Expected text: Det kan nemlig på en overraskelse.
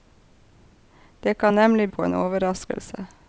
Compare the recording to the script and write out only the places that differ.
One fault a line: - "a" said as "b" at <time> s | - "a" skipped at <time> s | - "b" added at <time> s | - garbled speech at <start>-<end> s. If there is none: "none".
none